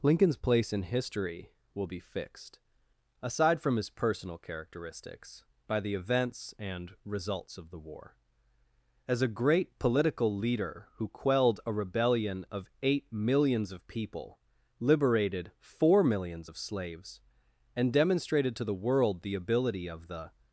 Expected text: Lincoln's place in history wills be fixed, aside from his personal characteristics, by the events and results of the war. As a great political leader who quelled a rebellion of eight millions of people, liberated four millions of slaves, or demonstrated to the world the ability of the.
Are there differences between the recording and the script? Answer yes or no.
yes